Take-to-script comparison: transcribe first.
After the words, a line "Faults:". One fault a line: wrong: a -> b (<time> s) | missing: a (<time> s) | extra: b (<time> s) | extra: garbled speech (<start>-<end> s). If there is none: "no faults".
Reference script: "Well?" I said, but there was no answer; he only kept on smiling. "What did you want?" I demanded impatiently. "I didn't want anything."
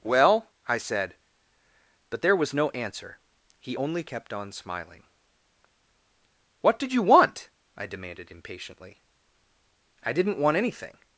"Well?" I said, but there was no answer; he only kept on smiling. "What did you want?" I demanded impatiently. "I didn't want anything."
Faults:
no faults